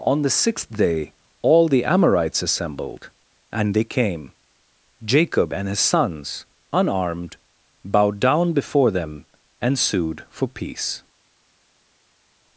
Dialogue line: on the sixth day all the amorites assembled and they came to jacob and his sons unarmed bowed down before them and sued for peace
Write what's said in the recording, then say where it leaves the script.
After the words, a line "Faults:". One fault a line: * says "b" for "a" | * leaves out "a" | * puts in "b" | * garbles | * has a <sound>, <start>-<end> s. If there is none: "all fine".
on the sixth day all the amorites assembled and they came jacob and his sons unarmed bowed down before them and sued for peace
Faults:
* leaves out "to"